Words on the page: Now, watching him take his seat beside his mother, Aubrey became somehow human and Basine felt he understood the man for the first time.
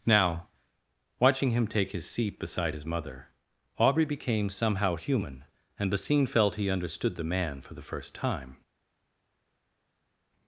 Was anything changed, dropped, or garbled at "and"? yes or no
no